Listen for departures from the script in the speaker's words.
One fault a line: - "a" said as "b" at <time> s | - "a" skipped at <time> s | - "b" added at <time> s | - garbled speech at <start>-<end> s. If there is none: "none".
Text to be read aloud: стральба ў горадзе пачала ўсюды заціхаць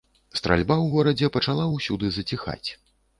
none